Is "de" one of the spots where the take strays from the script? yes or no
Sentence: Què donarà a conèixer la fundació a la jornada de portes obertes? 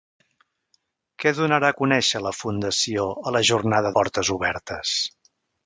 yes